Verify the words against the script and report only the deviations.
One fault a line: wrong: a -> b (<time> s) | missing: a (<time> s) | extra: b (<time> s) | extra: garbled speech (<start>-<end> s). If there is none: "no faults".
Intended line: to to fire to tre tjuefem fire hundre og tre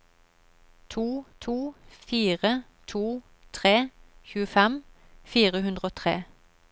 no faults